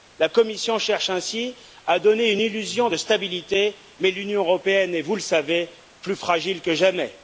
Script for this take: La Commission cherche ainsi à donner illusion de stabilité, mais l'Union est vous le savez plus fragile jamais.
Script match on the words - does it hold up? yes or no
no